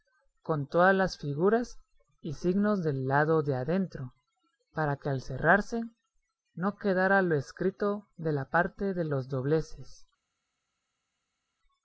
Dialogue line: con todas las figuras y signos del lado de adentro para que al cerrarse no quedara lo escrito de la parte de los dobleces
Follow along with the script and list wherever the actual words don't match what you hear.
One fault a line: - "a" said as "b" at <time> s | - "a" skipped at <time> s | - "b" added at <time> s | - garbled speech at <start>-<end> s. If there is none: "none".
none